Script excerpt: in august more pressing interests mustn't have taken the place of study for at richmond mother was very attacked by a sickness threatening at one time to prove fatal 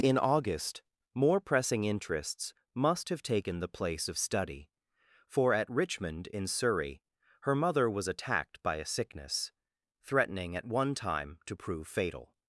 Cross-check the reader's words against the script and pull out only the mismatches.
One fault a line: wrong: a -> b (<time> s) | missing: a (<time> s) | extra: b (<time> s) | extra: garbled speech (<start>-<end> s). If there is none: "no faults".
wrong: mustn't -> must (2.7 s)
extra: in surrey her (6.3 s)
missing: very (8.1 s)